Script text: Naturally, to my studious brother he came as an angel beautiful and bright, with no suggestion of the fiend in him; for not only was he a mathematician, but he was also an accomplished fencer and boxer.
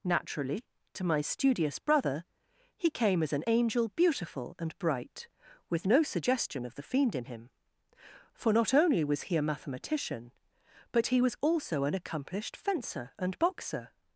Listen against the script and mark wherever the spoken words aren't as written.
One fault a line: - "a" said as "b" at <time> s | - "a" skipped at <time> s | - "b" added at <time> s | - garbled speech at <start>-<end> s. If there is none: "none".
none